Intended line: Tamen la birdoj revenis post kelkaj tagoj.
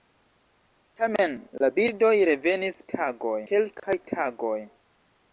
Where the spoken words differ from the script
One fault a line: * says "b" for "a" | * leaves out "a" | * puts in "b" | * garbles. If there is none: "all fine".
* says "tagoj" for "post"